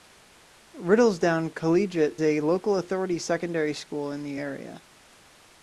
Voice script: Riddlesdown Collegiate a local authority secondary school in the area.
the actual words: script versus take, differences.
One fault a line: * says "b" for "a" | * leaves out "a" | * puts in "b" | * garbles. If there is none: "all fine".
all fine